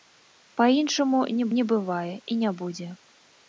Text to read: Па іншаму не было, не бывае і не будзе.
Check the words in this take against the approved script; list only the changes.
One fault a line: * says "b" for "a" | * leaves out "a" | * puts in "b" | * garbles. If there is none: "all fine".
* leaves out "было"